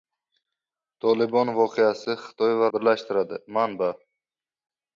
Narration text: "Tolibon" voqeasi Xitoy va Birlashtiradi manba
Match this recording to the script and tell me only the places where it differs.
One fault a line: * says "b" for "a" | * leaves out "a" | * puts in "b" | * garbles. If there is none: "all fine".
all fine